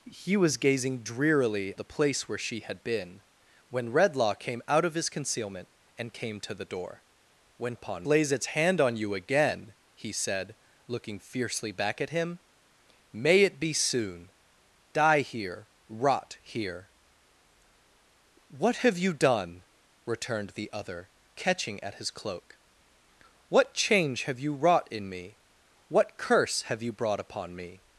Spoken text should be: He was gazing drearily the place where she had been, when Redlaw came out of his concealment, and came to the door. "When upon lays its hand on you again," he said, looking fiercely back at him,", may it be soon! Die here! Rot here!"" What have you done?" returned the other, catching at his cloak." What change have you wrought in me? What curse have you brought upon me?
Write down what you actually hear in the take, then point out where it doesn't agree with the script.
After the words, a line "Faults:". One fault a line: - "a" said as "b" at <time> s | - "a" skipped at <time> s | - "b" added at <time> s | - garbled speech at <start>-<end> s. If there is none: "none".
He was gazing drearily the place where she had been, when Redlaw came out of his concealment, and came to the door. "When upon lays its hand on you again," he said, looking fiercely back at him,", may it be soon! Die here! Rot here!"" What have you done?" returned the other, catching at his cloak." What change have you wrought in me? What curse have you brought upon me?
Faults:
none